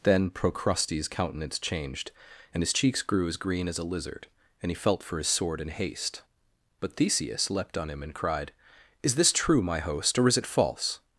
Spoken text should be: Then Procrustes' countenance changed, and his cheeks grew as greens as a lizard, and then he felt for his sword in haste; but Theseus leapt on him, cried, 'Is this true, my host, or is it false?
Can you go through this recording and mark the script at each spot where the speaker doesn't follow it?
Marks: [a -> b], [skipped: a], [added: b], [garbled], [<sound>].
Then Procrustes' countenance changed, and his cheeks grew as [greens -> green] as a lizard, and [skipped: then] he felt for his sword in haste; but Theseus leapt on him, [added: and] cried, 'Is this true, my host, or is it false?